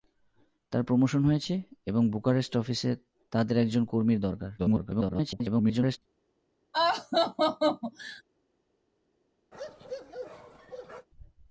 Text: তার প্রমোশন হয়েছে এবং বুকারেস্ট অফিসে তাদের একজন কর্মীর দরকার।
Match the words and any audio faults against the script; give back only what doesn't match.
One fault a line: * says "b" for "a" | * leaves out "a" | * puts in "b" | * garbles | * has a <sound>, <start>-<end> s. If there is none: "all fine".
* garbles
* has a laugh, 6.7-8.2 s
* has a bark, 9.5-11.1 s